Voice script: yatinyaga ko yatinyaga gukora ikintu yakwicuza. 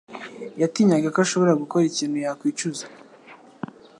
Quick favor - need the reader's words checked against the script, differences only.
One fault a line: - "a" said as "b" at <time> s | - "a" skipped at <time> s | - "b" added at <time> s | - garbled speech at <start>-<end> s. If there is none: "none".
- "yatinyaga" said as "ashobora" at 1.2 s